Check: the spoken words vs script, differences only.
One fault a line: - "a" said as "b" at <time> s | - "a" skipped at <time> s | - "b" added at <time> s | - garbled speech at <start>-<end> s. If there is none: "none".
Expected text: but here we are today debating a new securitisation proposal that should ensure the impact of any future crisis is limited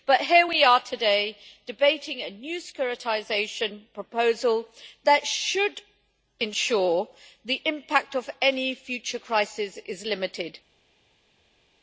none